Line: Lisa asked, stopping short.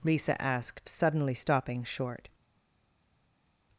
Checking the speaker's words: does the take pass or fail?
fail